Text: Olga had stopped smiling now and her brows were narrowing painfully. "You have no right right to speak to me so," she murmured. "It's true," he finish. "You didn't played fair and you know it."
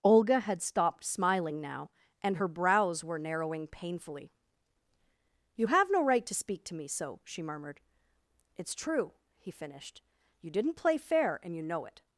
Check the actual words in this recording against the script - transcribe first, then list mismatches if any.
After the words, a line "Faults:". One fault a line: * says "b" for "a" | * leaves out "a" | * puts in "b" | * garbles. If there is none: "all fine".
Olga had stopped smiling now and her brows were narrowing painfully. "You have no right to speak to me so," she murmured. "It's true," he finished. "You didn't play fair and you know it."
Faults:
* leaves out "right"
* says "finished" for "finish"
* says "play" for "played"